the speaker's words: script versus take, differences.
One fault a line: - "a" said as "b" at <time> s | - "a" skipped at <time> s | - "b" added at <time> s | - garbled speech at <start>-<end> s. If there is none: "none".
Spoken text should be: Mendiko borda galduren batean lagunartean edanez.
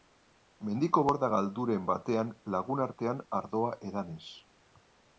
- "ardoa" added at 3.4 s